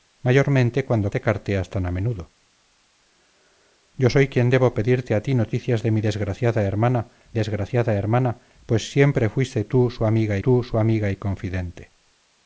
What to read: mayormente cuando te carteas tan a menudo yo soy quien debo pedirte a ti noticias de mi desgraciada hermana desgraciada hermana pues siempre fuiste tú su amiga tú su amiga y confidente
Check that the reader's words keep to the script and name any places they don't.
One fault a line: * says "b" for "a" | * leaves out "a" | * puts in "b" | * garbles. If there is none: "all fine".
all fine